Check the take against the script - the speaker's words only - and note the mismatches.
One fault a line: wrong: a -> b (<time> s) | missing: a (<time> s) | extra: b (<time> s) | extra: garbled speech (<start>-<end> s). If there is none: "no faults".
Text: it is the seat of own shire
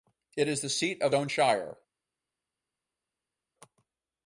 no faults